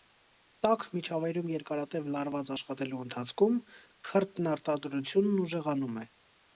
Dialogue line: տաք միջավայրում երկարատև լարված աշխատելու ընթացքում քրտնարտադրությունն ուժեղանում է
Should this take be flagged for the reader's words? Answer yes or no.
no